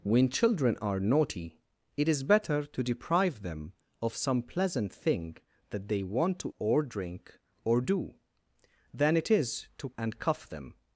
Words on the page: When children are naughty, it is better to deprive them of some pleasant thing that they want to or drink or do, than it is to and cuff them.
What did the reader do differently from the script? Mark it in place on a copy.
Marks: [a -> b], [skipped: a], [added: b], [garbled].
When children are naughty, it is better to deprive them of some pleasant thing that they want to or drink or do, than it is to and cuff them.